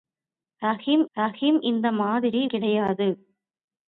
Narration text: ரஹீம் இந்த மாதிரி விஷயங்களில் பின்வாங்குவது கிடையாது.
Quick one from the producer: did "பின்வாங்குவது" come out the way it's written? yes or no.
no